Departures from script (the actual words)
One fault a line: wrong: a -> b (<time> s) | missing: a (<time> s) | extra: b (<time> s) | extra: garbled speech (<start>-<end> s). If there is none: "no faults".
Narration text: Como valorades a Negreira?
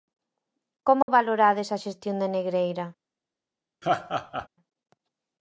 extra: xestión de (1.8 s)